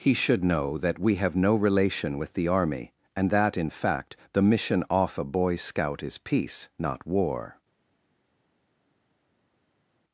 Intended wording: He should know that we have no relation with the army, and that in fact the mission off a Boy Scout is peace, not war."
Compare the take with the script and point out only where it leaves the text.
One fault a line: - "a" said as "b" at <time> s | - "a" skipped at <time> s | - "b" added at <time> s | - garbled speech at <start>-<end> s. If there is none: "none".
none